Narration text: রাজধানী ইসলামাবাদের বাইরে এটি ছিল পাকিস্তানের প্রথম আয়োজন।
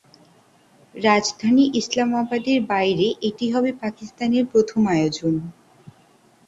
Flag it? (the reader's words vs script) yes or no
yes